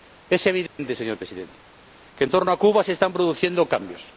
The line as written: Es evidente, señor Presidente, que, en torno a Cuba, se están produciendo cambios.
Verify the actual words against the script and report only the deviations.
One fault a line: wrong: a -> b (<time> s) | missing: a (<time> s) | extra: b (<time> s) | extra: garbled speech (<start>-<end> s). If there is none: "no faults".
no faults